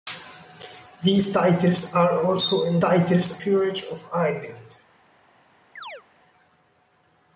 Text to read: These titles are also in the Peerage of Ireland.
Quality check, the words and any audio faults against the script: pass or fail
fail